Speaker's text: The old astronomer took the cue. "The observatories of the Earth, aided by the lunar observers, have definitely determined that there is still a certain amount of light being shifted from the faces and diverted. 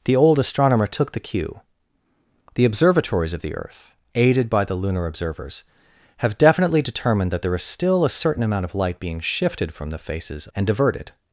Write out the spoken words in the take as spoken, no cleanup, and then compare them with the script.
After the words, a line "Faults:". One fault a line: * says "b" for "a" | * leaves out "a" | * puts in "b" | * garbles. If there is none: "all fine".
The old astronomer took the cue. "The observatories of the Earth, aided by the lunar observers, have definitely determined that there is still a certain amount of light being shifted from the faces and diverted.
Faults:
all fine